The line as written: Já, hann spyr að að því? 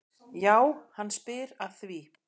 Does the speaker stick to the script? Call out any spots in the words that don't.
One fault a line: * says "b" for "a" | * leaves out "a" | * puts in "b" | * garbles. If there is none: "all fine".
* leaves out "að"